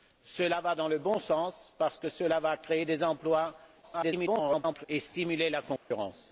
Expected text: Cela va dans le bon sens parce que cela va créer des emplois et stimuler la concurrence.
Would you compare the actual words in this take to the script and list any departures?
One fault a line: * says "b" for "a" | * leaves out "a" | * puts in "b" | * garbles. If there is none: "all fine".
* garbles